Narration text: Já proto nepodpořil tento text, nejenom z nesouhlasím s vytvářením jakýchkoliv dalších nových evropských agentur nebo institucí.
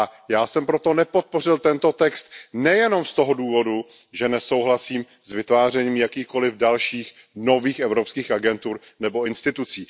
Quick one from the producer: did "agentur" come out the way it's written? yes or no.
yes